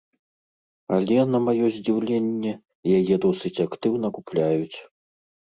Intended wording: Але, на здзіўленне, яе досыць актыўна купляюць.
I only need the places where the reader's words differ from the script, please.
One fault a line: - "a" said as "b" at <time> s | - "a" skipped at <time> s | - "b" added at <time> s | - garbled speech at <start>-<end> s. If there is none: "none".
- "маё" added at 1.5 s